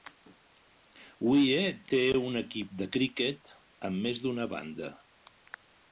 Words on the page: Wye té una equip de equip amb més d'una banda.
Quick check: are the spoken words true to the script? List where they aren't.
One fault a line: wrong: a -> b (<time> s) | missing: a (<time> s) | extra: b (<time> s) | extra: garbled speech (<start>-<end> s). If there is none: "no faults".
wrong: una -> un (2.3 s)
wrong: equip -> criquet (3.0 s)